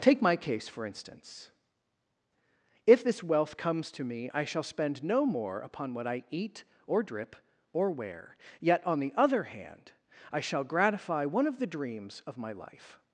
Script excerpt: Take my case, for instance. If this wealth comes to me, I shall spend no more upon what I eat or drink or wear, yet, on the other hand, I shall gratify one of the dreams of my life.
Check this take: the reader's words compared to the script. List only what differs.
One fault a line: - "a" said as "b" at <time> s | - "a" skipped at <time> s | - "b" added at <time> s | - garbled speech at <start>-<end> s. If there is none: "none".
- "drink" said as "drip" at 7.0 s